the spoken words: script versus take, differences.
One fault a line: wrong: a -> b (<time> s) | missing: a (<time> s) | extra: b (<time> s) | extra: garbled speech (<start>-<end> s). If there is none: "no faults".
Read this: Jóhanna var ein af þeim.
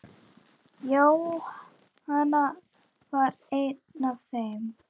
no faults